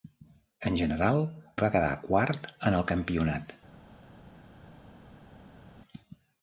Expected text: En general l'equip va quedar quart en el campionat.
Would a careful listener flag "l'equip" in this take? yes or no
yes